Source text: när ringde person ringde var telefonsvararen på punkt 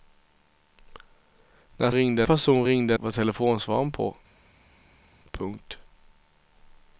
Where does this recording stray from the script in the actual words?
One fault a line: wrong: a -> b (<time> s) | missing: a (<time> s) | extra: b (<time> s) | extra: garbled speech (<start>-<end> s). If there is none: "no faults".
no faults